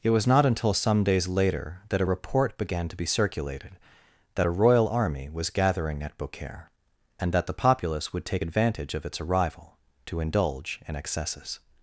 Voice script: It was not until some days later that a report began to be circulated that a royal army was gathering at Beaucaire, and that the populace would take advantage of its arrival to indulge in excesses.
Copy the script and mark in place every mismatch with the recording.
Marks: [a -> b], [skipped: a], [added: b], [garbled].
It was not until some days later that a report began to be circulated that a royal army was gathering at Beaucaire, and that the populace would take advantage of its arrival to indulge in excesses.